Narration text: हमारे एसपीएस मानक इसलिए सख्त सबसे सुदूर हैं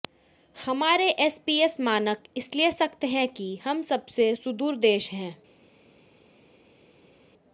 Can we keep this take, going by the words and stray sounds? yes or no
no